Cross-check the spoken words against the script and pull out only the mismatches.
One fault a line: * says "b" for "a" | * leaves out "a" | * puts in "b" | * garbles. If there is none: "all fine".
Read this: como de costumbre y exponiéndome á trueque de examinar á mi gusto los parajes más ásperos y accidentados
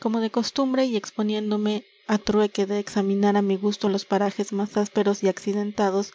all fine